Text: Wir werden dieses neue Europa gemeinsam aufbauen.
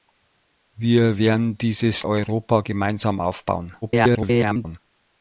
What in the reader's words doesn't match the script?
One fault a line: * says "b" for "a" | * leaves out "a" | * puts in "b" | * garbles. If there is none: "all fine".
* leaves out "neue"
* garbles